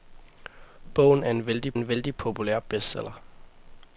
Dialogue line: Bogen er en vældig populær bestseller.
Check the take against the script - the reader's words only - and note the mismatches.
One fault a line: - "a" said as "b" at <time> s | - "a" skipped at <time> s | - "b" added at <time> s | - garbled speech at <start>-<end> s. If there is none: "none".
- "en vældig" added at 1.7 s